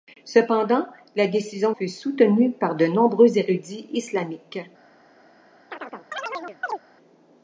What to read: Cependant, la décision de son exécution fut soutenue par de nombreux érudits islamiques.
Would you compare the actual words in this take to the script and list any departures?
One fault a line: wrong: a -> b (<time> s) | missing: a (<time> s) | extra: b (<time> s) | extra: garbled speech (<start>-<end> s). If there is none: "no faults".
missing: de son exécution (1.7 s)